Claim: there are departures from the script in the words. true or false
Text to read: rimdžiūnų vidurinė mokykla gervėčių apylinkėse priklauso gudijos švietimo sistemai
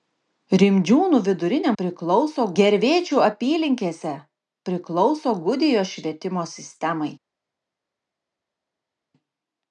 true